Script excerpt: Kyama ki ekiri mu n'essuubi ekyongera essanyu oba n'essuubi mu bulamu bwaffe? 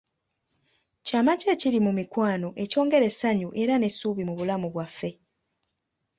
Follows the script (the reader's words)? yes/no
no